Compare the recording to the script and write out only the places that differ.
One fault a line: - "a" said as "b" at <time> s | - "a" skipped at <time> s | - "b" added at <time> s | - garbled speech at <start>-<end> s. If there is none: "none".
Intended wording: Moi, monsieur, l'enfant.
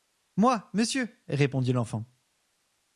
- "répondit" added at 1.3 s